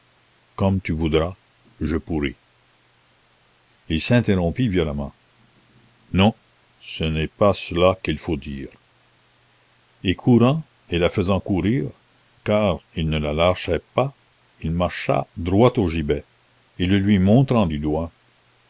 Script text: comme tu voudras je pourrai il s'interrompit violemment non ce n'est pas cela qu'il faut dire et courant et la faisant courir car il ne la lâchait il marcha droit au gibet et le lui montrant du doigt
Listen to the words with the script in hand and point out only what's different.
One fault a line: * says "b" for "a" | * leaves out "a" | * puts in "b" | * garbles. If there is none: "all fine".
* puts in "pas"